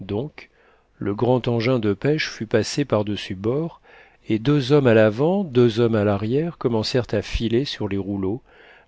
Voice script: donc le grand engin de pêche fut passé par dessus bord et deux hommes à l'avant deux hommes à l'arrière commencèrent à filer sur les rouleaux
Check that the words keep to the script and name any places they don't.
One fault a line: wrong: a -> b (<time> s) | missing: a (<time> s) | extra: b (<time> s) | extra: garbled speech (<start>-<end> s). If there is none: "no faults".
no faults